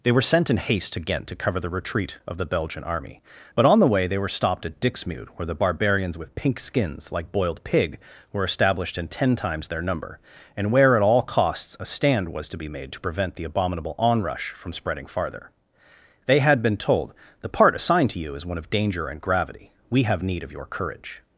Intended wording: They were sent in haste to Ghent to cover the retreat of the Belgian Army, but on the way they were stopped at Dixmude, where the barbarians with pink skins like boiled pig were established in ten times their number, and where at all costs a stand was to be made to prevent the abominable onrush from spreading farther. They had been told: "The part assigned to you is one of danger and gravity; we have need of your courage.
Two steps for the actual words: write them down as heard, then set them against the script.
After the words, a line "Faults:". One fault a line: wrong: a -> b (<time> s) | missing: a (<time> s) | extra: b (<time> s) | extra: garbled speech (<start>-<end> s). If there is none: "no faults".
They were sent in haste to Ghent to cover the retreat of the Belgian Army, but on the way they were stopped at Dixmude, where the barbarians with pink skins like boiled pig were established in ten times their number, and where at all costs a stand was to be made to prevent the abominable onrush from spreading farther. They had been told: "The part assigned to you is one of danger and gravity; we have need of your courage.
Faults:
no faults